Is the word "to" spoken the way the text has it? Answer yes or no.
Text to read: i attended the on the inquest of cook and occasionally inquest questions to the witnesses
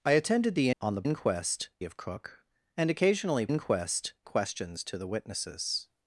yes